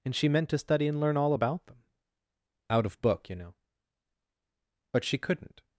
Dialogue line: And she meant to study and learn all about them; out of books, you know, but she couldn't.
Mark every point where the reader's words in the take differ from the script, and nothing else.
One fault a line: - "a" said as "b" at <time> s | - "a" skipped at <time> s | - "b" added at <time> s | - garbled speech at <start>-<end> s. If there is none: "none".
- "books" said as "book" at 3.0 s